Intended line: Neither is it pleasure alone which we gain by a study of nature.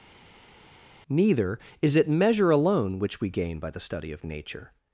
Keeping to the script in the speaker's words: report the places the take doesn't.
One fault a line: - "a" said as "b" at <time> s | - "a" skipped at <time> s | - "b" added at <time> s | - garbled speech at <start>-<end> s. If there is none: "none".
- "pleasure" said as "measure" at 2.1 s
- "a" said as "the" at 3.7 s